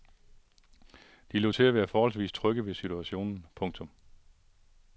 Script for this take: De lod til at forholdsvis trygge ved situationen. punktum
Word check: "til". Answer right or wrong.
right